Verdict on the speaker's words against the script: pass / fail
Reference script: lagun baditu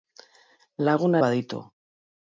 pass